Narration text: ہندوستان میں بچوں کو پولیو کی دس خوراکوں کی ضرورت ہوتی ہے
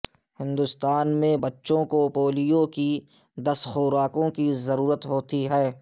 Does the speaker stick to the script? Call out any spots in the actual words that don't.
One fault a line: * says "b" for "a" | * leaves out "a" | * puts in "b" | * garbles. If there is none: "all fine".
all fine